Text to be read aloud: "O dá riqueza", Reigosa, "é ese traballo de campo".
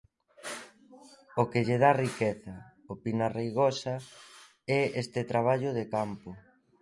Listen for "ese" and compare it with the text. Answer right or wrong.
wrong